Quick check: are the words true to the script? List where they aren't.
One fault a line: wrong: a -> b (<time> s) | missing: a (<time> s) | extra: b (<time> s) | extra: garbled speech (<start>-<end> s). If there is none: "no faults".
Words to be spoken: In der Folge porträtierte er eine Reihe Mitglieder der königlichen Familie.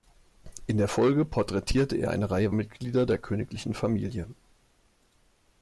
no faults